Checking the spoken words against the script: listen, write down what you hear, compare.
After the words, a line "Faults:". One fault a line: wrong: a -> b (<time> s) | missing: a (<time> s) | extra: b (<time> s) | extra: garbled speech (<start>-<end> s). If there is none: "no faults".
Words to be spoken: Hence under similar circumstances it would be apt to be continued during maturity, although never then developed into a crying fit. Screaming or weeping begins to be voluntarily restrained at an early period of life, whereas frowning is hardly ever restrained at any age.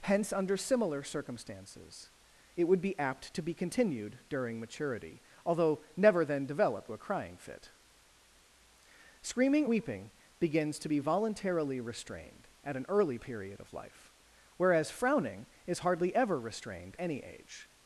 Hence under similar circumstances it would be apt to be continued during maturity, although never then developed a crying fit. Screaming weeping begins to be voluntarily restrained at an early period of life, whereas frowning is hardly ever restrained any age.
Faults:
missing: into (6.9 s)
missing: or (9.6 s)
missing: at (17.0 s)